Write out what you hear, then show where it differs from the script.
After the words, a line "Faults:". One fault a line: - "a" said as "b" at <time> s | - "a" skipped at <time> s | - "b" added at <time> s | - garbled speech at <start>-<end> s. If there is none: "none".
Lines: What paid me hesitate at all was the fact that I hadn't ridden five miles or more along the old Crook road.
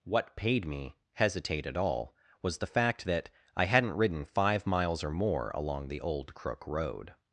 What paid me hesitate at all was the fact that I hadn't ridden five miles or more along the old Crook road.
Faults:
none